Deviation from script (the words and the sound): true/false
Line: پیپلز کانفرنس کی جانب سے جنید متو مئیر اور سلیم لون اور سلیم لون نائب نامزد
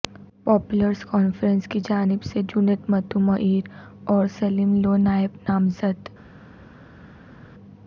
true